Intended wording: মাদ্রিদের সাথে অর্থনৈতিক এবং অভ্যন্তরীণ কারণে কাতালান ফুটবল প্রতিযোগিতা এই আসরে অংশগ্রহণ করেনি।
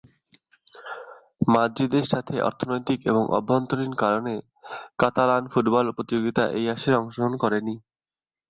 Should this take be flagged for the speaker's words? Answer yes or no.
no